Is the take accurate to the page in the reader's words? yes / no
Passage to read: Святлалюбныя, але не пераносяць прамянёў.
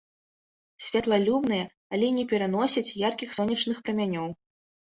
no